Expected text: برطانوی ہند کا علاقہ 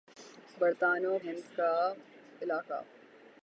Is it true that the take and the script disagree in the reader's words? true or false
false